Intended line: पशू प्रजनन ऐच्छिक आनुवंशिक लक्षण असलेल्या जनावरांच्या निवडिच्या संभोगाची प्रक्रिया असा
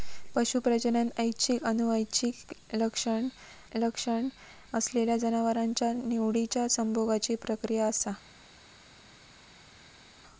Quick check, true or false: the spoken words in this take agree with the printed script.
false